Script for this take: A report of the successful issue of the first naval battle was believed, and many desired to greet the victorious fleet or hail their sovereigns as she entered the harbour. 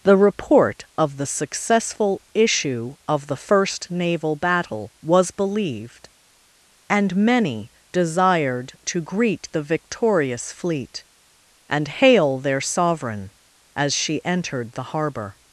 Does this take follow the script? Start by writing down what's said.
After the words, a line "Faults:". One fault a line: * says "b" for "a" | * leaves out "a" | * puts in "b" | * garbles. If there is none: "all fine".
The report of the successful issue of the first naval battle was believed, and many desired to greet the victorious fleet and hail their sovereign as she entered the harbour.
Faults:
* says "The" for "A"
* says "and" for "or"
* says "sovereign" for "sovereigns"